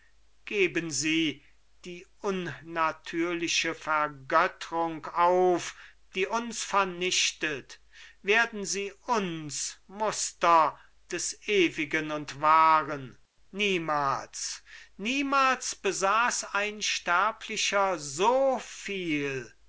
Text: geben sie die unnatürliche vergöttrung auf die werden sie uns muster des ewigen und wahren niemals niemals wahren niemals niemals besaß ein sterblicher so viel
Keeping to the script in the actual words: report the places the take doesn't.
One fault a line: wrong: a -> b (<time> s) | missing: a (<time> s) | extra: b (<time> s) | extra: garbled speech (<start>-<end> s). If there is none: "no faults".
extra: uns vernichtet (6.2 s)
missing: wahren niemals niemals (15.8 s)